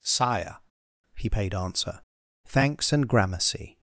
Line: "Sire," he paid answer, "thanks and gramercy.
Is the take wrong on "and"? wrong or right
right